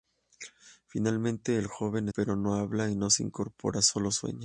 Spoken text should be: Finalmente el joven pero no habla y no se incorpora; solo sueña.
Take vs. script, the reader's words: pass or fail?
pass